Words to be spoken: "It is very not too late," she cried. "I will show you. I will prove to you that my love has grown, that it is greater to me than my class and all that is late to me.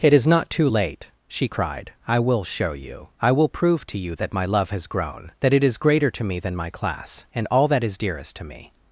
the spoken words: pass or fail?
fail